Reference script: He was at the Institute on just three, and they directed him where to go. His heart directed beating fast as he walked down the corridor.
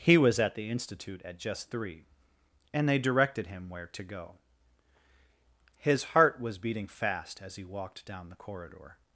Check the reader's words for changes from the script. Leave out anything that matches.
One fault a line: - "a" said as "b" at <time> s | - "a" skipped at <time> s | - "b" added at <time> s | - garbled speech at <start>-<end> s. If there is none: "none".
- "on" said as "at" at 1.2 s
- "directed" said as "was" at 6.4 s